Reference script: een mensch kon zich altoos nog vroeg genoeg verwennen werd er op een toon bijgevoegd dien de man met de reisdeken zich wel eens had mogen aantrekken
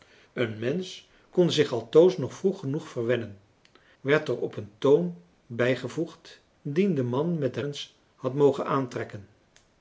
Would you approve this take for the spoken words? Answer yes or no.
no